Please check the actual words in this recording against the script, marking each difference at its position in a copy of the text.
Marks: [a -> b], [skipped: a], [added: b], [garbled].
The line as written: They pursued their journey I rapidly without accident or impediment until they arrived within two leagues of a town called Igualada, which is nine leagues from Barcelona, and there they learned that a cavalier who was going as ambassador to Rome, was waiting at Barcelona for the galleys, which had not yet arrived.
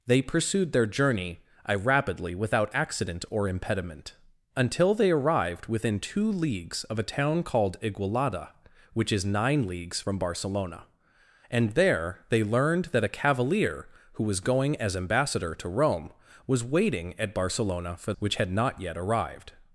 They pursued their journey I rapidly without accident or impediment until they arrived within two leagues of a town called Igualada, which is nine leagues from Barcelona, and there they learned that a cavalier who was going as ambassador to Rome, was waiting at Barcelona for [skipped: the galleys,] which had not yet arrived.